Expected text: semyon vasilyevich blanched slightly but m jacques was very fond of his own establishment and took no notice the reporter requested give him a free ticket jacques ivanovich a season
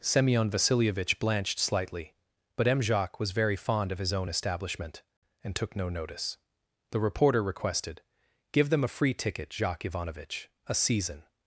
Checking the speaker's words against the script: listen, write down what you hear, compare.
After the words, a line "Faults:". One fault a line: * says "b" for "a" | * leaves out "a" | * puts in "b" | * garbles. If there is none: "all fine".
semyon vasilyevich blanched slightly but m jacques was very fond of his own establishment and took no notice the reporter requested give them a free ticket jacques ivanovich a season
Faults:
* says "them" for "him"